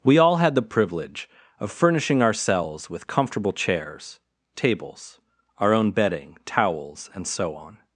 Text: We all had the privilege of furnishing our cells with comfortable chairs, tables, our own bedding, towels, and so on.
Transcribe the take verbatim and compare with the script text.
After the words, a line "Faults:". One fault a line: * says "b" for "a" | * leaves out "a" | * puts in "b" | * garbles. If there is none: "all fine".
We all had the privilege of furnishing our cells with comfortable chairs, tables, our own bedding, towels, and so on.
Faults:
all fine